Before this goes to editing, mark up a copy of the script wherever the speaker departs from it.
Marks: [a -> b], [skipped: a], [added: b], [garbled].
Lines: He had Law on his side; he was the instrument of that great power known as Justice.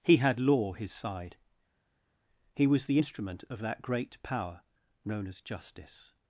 He had Law [skipped: on] his side; he was the instrument of that great power known as Justice.